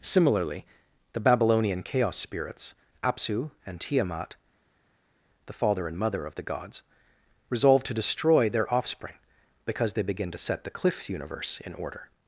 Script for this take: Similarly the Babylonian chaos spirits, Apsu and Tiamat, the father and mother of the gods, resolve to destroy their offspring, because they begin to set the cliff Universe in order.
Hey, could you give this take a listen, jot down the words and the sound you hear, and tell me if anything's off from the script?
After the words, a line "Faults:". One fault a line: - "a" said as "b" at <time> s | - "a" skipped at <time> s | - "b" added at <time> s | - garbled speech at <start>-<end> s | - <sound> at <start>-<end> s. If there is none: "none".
Similarly the Babylonian chaos spirits, Apsu and Tiamat, the father and mother of the gods, resolve to destroy their offspring, because they begin to set the cliff Universe in order.
Faults:
none